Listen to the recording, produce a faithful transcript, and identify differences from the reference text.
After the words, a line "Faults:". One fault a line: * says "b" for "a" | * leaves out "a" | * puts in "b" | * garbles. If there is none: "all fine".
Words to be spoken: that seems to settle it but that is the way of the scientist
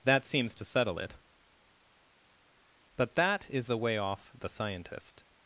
that seems to settle it but that is the way off the scientist
Faults:
* says "off" for "of"